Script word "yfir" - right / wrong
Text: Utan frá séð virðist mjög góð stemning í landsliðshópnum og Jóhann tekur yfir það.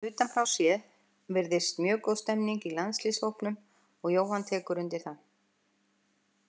wrong